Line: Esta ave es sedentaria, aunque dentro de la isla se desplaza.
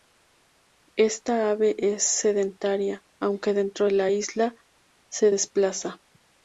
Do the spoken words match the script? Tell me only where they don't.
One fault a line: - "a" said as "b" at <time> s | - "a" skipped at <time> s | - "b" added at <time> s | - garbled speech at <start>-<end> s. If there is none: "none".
none